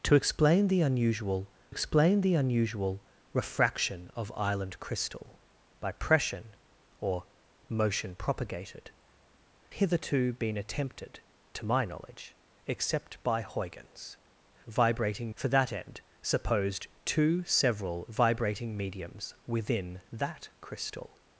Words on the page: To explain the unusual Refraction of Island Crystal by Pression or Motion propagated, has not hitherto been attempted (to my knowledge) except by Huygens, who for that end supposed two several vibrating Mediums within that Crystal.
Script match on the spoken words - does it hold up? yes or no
no